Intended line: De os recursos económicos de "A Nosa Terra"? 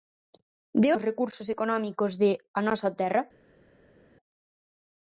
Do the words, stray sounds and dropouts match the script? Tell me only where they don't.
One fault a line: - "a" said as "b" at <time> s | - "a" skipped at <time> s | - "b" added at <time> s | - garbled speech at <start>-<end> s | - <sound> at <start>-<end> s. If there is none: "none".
none